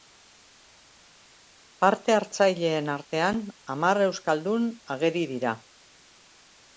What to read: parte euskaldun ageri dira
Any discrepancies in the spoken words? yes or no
yes